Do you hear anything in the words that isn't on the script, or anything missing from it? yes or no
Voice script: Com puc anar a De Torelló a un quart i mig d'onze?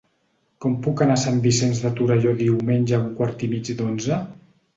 yes